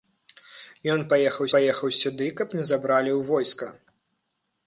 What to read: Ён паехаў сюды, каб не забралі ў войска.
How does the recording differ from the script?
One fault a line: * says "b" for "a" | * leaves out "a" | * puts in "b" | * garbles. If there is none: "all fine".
* puts in "паехаў"